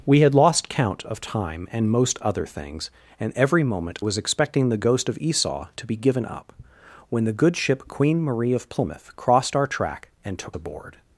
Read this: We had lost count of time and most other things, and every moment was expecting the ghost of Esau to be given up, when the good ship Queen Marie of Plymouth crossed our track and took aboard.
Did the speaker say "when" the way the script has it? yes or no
yes